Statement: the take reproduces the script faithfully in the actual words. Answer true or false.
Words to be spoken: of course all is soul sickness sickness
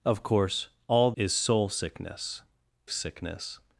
true